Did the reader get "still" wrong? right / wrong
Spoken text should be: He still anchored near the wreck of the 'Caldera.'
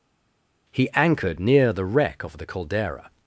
wrong